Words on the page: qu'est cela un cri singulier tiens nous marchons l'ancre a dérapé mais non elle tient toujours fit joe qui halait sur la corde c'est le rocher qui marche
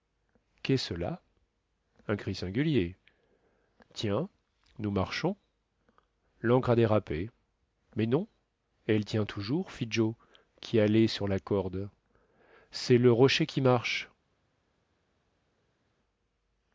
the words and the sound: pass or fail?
pass